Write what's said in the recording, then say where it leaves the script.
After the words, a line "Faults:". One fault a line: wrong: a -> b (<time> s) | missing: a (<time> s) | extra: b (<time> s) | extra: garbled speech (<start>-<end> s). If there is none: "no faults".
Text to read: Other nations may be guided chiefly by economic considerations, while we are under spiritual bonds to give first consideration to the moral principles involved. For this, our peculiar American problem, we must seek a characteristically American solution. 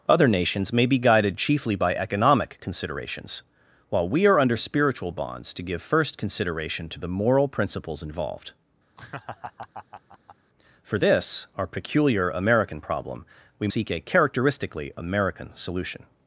Other nations may be guided chiefly by economic considerations, while we are under spiritual bonds to give first consideration to the moral principles involved. For this, our peculiar American problem, we seek a characteristically American solution.
Faults:
missing: must (13.7 s)